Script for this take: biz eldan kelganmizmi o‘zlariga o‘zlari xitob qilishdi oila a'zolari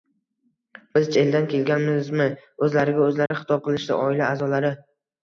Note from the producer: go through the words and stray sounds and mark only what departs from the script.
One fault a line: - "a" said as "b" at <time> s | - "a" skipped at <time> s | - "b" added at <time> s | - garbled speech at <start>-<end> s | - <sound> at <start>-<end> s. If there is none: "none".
- dropout at 3.3-3.3 s